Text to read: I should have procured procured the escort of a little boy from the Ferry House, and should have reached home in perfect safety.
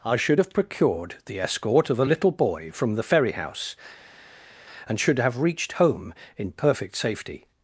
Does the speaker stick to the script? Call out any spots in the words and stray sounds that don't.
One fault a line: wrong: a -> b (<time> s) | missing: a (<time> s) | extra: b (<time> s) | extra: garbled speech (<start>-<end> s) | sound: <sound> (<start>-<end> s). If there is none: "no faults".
missing: procured (1.2 s)